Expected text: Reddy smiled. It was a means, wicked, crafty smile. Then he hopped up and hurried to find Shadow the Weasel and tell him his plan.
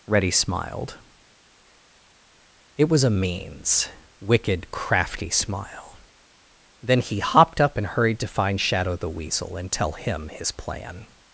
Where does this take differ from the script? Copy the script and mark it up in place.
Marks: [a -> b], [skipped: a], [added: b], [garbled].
Reddy smiled. It was a means, wicked, crafty smile. Then he hopped up and hurried to find Shadow the Weasel and tell him his plan.